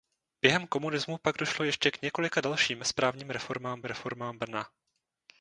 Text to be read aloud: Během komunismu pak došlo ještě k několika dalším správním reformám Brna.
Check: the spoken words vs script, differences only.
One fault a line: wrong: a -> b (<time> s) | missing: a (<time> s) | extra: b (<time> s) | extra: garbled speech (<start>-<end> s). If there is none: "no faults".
extra: reformám (3.8 s)